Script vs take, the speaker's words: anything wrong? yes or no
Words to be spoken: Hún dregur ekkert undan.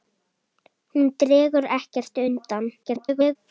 yes